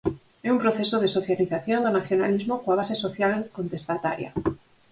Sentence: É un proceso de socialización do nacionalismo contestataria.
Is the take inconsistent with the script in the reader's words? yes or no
yes